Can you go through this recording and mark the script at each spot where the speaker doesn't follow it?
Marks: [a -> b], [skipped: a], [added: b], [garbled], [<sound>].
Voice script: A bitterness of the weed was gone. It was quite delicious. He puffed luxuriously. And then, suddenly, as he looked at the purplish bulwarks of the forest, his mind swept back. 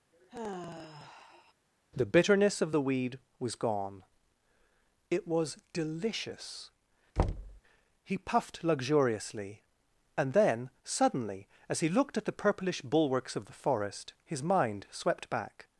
[sigh] [A -> The] bitterness of the weed was gone. It was [skipped: quite] delicious. [thud] He puffed luxuriously. And then, suddenly, as he looked at the purplish bulwarks of the forest, his mind swept back.